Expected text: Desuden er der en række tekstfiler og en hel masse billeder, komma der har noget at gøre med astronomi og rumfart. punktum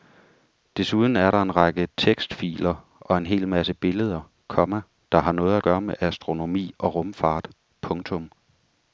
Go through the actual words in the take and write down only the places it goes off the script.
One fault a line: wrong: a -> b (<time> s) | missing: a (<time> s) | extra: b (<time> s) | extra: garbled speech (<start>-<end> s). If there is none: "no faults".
no faults